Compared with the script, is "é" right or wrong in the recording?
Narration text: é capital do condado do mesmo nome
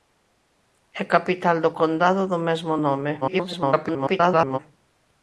right